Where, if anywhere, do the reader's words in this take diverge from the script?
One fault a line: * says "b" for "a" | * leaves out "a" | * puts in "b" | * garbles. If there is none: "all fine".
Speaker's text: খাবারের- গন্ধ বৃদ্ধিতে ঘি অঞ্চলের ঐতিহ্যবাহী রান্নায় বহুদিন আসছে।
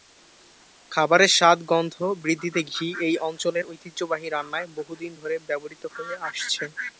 * puts in "স্বাদ"
* puts in "এই"
* puts in "ধরে ব্যবহৃত হয়ে"